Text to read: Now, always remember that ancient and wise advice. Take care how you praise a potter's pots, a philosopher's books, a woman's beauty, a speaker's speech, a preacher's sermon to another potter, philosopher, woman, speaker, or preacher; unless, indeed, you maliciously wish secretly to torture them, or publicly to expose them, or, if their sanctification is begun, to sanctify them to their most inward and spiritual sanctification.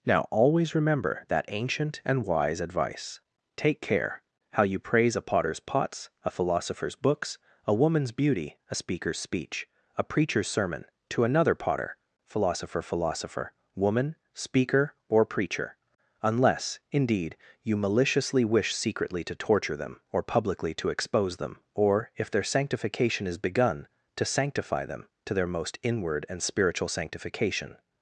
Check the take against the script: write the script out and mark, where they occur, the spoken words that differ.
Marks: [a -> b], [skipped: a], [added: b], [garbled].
Now, always remember that ancient and wise advice. Take care how you praise a potter's pots, a philosopher's books, a woman's beauty, a speaker's speech, a preacher's sermon to another potter, philosopher, [added: philosopher] woman, speaker, or preacher; unless, indeed, you maliciously wish secretly to torture them, or publicly to expose them, or, if their sanctification is begun, to sanctify them to their most inward and spiritual sanctification.